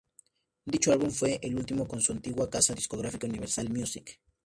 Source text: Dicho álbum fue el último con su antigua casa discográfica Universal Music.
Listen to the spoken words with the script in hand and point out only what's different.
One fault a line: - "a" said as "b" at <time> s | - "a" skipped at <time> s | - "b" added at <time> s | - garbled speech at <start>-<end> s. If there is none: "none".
none